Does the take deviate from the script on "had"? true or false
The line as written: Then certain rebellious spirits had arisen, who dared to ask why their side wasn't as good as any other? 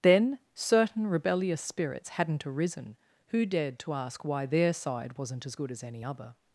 true